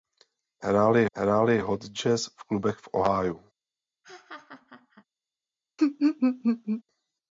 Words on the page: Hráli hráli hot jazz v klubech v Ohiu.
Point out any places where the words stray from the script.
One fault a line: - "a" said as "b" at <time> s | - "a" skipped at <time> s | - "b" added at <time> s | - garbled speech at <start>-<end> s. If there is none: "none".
none